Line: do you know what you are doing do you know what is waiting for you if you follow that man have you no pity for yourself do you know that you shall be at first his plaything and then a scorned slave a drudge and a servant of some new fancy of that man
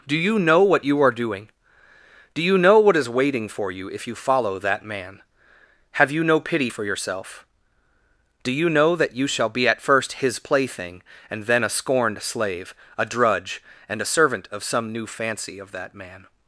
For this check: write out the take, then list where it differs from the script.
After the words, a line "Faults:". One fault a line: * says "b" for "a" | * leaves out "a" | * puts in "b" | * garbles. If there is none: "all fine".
do you know what you are doing do you know what is waiting for you if you follow that man have you no pity for yourself do you know that you shall be at first his plaything and then a scorned slave a drudge and a servant of some new fancy of that man
Faults:
all fine